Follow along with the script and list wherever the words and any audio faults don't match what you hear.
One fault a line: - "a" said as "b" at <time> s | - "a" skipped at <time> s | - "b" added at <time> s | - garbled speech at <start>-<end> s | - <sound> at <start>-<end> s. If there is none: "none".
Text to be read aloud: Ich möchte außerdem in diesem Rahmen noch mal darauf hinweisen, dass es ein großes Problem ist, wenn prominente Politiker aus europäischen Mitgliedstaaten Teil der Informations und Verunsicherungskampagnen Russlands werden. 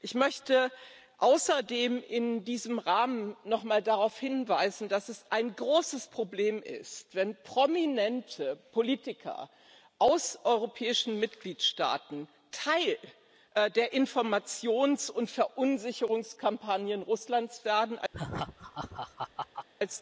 - laugh at 18.1-19.7 s